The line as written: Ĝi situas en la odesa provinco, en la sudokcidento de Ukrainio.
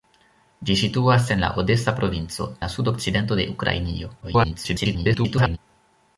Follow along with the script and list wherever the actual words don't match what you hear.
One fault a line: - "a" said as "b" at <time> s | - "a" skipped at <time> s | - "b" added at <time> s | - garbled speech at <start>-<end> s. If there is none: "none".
- "en" skipped at 2.5 s
- garbled speech at 4.2-5.6 s